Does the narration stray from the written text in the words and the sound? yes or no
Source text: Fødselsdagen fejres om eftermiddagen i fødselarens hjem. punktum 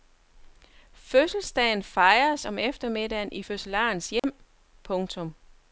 yes